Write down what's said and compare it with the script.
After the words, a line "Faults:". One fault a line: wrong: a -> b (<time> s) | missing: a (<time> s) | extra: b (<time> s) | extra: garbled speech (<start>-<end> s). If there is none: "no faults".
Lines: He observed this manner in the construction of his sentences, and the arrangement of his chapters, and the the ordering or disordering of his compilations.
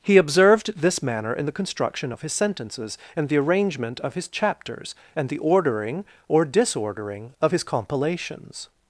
He observed this manner in the construction of his sentences, and the arrangement of his chapters, and the ordering or disordering of his compilations.
Faults:
missing: the (5.4 s)